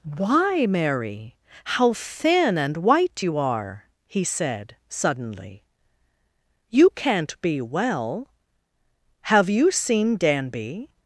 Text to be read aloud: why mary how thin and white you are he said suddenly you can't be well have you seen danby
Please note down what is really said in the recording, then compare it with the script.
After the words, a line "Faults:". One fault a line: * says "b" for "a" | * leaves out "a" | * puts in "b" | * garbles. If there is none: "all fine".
why mary how thin and white you are he said suddenly you can't be well have you seen danby
Faults:
all fine